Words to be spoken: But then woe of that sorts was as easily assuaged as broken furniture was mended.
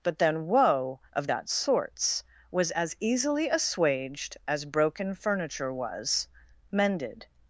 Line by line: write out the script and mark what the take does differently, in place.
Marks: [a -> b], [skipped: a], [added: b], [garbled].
But then woe of that sorts was as easily assuaged as broken furniture was mended.